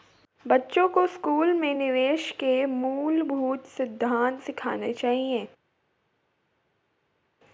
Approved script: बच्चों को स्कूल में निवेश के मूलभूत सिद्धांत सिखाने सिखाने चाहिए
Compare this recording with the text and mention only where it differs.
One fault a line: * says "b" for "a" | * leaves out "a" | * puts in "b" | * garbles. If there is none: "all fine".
* leaves out "सिखाने"